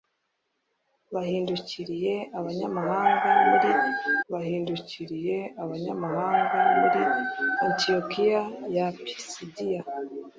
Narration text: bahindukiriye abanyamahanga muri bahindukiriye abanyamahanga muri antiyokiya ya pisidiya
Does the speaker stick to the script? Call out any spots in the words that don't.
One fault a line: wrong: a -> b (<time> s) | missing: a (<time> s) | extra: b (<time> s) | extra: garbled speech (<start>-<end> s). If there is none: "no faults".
no faults